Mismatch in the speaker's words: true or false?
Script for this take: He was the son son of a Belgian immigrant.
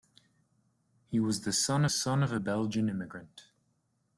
false